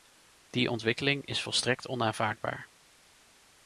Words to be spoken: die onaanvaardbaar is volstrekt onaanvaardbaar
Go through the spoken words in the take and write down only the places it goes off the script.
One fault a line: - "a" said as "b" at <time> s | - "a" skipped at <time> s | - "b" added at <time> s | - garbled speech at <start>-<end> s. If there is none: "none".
- "onaanvaardbaar" said as "ontwikkeling" at 0.7 s